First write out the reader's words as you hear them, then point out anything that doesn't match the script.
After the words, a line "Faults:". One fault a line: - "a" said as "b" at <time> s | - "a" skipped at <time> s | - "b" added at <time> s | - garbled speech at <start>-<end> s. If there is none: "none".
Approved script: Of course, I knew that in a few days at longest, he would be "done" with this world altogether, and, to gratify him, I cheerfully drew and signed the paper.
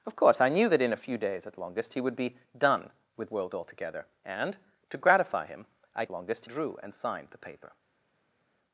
Of course, I knew that in a few days at longest, he would be "done" with world altogether, and, to gratify him, I longest drew and signed the paper.
Faults:
- "this" skipped at 3.3 s
- "cheerfully" said as "longest" at 6.1 s